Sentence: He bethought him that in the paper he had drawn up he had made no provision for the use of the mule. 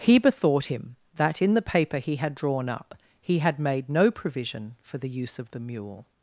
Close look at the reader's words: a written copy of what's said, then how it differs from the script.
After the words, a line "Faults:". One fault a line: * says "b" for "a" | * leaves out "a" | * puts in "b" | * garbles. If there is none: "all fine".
He bethought him that in the paper he had drawn up he had made no provision for the use of the mule.
Faults:
all fine